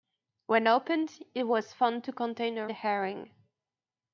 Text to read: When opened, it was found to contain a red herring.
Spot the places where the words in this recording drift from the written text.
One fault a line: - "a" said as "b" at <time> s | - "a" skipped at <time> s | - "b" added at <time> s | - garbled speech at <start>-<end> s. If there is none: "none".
- "red" skipped at 2.7 s